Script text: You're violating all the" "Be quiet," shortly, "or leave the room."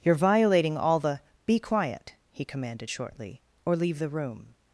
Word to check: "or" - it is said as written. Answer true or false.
true